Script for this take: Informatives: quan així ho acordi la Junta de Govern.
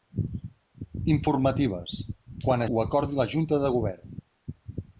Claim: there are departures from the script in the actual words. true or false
true